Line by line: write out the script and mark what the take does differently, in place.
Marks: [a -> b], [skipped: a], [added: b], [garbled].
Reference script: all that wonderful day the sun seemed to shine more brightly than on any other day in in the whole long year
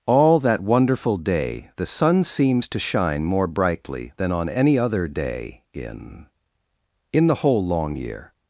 all that wonderful day the sun seemed to shine more brightly than on any other day in in the whole long year